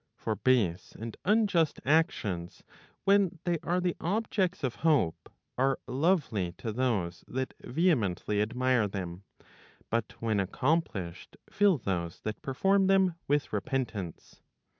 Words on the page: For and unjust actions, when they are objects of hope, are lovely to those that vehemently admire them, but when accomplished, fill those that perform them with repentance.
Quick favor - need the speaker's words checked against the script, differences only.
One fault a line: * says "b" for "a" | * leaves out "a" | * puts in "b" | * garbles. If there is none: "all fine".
* puts in "base"
* puts in "the"